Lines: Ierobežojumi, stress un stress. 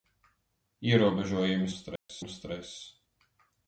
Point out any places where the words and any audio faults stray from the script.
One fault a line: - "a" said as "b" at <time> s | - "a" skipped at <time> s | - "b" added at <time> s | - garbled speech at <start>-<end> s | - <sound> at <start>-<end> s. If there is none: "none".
- dropout at 2.0-2.1 s